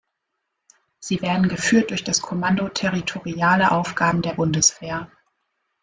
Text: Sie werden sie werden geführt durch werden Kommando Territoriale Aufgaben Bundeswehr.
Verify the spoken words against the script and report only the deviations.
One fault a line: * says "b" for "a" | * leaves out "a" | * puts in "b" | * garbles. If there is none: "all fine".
* leaves out "sie werden"
* says "das" for "werden"
* puts in "der"